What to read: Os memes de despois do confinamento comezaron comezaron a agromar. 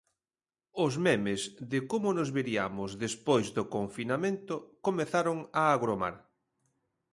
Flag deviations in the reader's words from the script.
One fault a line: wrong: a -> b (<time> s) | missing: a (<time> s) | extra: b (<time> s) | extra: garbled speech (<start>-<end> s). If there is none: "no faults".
extra: como nos veriamos (1.9 s)
missing: comezaron (5.4 s)